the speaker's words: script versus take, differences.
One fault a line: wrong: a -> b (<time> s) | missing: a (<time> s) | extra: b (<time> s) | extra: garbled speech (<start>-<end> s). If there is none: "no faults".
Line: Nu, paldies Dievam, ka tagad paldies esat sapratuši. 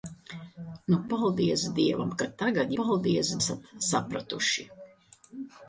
no faults